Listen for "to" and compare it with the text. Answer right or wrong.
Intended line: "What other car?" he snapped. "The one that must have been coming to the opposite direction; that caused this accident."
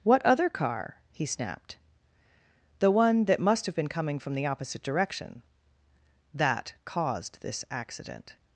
wrong